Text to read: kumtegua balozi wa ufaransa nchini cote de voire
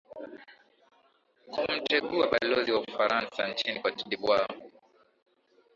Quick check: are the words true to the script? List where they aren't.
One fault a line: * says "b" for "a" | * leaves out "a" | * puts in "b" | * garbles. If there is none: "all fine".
all fine